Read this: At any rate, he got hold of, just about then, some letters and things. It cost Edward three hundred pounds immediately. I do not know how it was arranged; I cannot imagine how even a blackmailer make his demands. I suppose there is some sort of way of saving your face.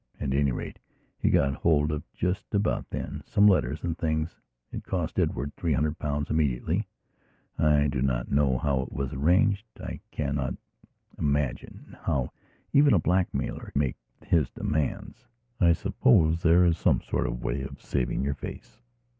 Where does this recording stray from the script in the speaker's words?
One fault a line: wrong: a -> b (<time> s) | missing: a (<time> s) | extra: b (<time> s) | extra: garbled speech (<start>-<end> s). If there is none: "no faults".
no faults